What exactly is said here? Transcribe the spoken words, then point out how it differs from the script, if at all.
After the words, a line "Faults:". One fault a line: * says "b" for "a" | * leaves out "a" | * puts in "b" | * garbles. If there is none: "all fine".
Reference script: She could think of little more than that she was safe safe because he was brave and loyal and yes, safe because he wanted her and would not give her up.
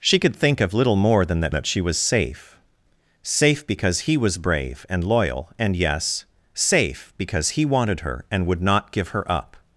She could think of little more than that that she was safe safe because he was brave and loyal and yes, safe because he wanted her and would not give her up.
Faults:
* puts in "that"